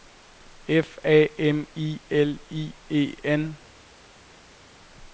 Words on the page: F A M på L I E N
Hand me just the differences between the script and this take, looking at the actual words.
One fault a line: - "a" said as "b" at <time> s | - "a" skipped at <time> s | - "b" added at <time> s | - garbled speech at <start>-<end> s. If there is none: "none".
- "på" said as "I" at 1.8 s